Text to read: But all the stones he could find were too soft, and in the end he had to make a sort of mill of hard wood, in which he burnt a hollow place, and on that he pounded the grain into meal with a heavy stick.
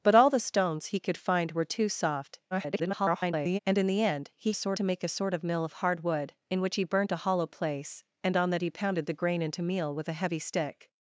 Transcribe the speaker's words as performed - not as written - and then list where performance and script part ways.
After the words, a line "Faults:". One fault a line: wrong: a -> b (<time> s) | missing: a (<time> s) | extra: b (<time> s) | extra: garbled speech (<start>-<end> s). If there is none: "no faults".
But all the stones he could find were too soft, [garbled] and in the end he sort to make a sort of mill of hard wood, in which he burnt a hollow place, and on that he pounded the grain into meal with a heavy stick.
Faults:
extra: garbled speech (2.5-3.6 s)
wrong: had -> sort (4.5 s)